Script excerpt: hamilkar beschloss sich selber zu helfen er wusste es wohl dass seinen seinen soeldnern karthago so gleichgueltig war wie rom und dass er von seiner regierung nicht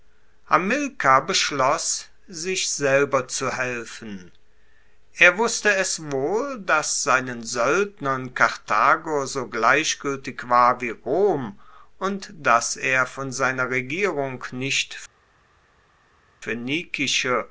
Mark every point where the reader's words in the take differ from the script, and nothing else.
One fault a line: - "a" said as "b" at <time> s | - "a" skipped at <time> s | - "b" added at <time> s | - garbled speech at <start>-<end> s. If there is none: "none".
- "seinen" skipped at 7.4 s